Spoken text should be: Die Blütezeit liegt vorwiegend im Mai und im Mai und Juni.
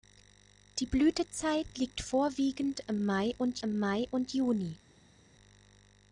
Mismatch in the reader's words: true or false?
false